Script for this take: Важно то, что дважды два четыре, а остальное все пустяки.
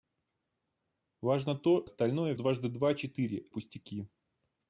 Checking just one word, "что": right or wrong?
wrong